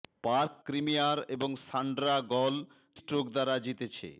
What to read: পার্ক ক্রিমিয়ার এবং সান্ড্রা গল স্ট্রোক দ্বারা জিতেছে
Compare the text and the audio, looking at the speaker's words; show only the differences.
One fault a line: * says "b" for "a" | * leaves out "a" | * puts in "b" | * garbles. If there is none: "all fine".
all fine